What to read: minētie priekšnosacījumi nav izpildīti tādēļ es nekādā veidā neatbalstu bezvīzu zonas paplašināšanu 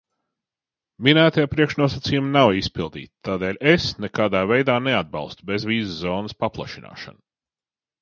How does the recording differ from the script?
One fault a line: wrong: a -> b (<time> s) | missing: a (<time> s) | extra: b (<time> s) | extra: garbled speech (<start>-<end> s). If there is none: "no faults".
no faults